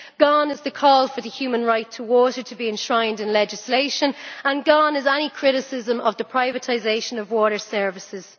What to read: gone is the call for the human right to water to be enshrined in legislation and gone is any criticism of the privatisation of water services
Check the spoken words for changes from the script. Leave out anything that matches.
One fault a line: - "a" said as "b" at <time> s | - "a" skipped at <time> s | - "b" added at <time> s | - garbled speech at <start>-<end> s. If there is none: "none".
none